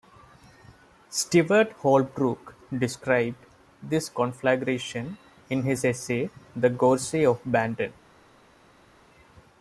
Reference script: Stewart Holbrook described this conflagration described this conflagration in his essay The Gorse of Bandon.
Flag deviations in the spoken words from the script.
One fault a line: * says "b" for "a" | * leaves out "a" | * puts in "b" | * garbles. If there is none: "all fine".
* leaves out "described this conflagration"